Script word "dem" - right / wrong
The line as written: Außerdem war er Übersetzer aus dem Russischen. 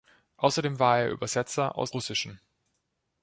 wrong